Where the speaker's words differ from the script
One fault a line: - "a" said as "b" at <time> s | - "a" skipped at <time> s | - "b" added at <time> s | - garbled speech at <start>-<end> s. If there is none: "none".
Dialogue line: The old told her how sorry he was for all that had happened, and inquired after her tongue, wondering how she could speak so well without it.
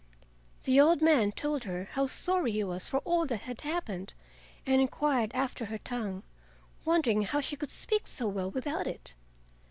- "man" added at 1.0 s